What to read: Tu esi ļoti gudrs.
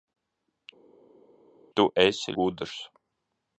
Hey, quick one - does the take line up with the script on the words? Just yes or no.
no